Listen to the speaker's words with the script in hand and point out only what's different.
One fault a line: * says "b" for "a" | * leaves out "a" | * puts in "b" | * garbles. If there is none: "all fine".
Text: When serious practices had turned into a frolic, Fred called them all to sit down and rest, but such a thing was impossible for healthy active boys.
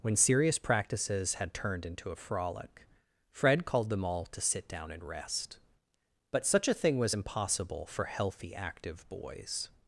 all fine